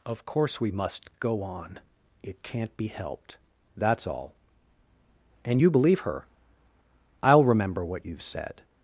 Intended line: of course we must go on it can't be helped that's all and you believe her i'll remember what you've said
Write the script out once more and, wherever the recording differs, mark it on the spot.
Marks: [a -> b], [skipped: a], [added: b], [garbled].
of course we must go on it can't be helped that's all and you believe her i'll remember what you've said